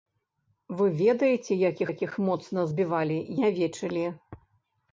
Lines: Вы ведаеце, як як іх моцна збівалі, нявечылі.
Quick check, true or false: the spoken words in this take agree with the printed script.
true